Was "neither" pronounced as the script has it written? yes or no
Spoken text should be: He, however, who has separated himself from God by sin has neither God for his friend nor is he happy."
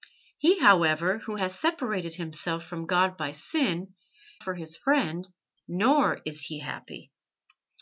no